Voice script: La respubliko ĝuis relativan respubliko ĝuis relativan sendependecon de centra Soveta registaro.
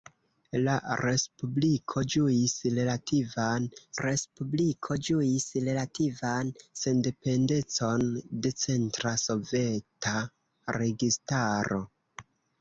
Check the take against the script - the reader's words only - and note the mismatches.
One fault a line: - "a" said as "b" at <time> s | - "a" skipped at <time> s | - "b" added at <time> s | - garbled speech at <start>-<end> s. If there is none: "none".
none